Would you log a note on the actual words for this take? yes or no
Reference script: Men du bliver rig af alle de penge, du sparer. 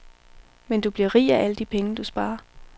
no